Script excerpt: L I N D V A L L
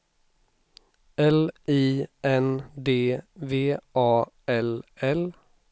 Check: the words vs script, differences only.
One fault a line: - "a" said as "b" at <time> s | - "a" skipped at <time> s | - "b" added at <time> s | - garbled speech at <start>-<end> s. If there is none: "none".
none